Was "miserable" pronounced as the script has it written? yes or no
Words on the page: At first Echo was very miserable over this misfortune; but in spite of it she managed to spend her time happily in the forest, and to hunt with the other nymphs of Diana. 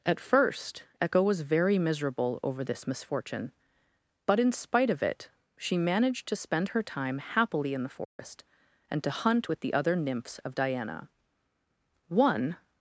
yes